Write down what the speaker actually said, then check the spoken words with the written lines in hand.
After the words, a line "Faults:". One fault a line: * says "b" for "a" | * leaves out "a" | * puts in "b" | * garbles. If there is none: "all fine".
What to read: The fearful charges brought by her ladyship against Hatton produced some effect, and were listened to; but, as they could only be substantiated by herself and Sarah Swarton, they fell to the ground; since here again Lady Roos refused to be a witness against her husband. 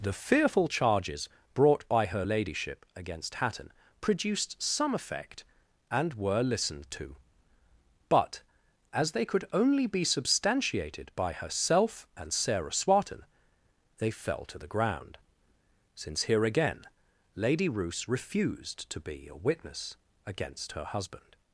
The fearful charges brought by her ladyship against Hatton produced some effect, and were listened to; but, as they could only be substantiated by herself and Sarah Swarton, they fell to the ground; since here again Lady Roos refused to be a witness against her husband.
Faults:
all fine